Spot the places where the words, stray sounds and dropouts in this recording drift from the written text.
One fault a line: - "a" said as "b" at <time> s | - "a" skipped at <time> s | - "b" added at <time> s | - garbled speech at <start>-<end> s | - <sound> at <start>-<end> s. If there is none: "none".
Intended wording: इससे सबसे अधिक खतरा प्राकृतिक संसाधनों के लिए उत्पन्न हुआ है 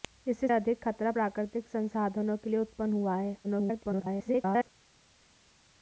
- "सबसे" skipped at 0.5 s
- garbled speech at 3.4-4.7 s